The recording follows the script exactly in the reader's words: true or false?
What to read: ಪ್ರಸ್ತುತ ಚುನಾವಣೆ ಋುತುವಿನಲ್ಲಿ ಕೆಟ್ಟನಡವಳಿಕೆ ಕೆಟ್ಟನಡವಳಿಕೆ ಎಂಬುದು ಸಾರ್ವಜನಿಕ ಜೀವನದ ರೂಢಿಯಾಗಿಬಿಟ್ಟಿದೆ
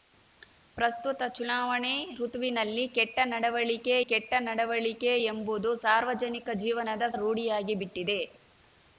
true